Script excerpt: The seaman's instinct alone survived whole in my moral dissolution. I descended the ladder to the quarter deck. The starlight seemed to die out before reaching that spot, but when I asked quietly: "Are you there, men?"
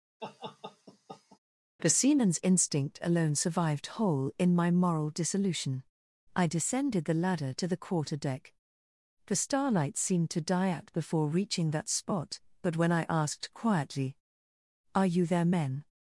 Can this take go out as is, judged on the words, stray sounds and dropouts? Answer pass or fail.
fail